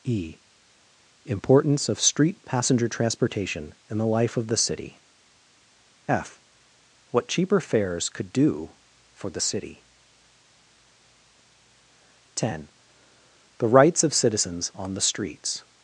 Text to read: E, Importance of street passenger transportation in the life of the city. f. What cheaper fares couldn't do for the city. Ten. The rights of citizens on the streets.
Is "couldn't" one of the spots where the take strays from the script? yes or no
yes